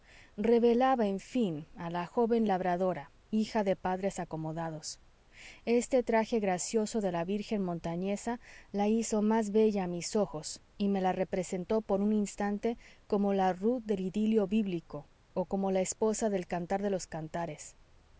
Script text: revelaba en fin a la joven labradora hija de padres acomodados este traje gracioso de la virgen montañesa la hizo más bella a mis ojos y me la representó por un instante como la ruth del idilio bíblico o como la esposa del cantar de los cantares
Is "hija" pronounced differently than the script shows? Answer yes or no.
no